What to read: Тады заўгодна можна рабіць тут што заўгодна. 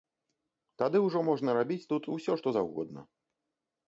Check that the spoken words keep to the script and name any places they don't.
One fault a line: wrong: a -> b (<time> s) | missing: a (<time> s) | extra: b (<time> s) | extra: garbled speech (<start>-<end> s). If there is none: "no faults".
wrong: заўгодна -> ўжо (1.1 s)
extra: усё (2.2 s)